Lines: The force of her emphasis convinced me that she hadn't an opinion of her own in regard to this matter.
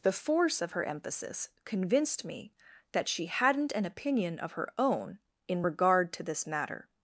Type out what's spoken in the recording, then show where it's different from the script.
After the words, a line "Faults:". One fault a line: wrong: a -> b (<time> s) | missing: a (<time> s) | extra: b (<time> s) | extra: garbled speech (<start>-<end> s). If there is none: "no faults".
The force of her emphasis convinced me that she hadn't an opinion of her own in regard to this matter.
Faults:
no faults